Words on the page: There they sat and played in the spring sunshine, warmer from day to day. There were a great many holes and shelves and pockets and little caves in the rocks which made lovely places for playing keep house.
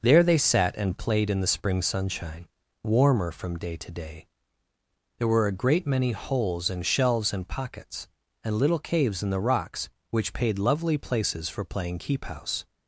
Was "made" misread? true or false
true